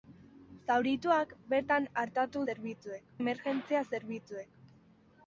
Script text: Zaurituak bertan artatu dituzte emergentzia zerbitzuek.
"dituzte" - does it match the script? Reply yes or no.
no